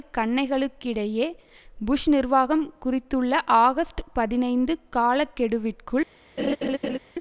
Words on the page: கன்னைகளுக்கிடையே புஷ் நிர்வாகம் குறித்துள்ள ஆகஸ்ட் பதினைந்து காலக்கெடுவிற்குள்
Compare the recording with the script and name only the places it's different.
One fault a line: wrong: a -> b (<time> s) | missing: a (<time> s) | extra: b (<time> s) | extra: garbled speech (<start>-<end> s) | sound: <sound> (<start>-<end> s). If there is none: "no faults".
sound: laugh (6.4-7.0 s)